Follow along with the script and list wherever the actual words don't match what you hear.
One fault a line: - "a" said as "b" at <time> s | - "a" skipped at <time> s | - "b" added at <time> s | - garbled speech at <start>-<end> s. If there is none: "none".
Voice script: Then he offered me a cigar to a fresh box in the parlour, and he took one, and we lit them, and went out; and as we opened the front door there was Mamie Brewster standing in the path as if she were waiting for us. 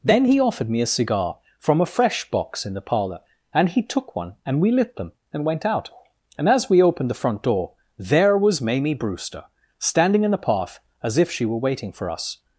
- "to" said as "from" at 1.6 s